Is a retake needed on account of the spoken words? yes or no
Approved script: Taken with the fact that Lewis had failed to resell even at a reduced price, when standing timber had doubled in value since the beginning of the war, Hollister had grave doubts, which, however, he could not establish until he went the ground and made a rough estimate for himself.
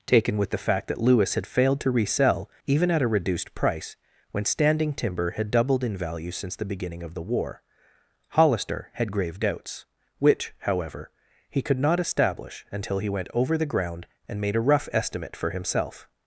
yes